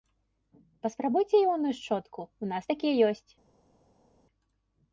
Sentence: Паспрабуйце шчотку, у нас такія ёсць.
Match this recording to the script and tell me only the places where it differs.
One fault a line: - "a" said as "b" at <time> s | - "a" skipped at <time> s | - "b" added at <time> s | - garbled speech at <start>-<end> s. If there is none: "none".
- "іонную" added at 1.4 s